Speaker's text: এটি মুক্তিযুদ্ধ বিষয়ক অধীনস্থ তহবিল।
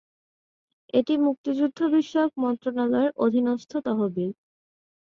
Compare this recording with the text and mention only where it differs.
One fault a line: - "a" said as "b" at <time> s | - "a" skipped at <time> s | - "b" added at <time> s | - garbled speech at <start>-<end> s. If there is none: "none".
- "মন্ত্রণালয়ের" added at 2.4 s